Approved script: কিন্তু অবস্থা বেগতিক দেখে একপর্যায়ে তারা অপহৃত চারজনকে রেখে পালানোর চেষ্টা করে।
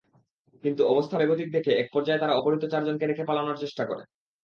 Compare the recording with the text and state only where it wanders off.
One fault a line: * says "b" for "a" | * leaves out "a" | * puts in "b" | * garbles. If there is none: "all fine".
all fine